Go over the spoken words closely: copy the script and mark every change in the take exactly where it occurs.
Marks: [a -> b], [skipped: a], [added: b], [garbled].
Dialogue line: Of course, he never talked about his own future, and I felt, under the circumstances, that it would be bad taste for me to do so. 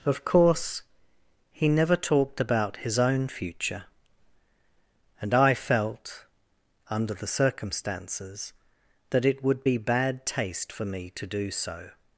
Of course, he never talked about his own future, and I felt, under the circumstances, that it would be bad taste for me to do so.